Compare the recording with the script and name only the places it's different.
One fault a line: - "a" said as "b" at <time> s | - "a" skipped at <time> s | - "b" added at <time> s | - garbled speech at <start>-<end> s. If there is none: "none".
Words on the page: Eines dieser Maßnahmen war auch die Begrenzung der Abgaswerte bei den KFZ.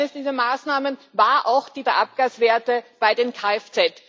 - "Begrenzung" skipped at 1.8 s